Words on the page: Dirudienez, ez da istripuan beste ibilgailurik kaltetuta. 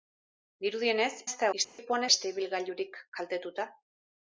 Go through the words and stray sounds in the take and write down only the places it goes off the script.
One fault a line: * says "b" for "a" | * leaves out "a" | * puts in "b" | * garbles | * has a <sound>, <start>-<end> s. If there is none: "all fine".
* has a dropout, 1.6-1.8 s